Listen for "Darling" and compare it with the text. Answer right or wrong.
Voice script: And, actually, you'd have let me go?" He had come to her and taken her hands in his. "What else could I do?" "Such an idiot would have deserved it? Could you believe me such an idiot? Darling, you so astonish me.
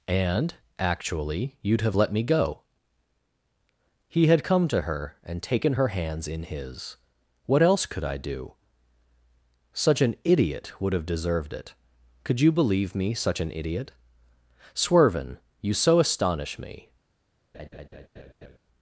wrong